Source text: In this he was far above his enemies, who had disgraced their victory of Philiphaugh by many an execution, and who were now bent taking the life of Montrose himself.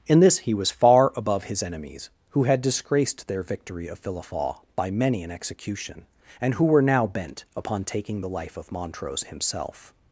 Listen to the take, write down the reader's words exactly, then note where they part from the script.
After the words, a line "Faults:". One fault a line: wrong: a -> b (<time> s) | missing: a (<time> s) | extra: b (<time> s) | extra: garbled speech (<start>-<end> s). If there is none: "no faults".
In this he was far above his enemies, who had disgraced their victory of Philiphaugh by many an execution, and who were now bent upon taking the life of Montrose himself.
Faults:
extra: upon (7.5 s)